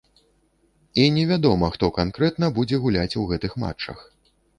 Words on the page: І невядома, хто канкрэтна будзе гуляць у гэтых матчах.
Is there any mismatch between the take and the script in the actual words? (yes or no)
no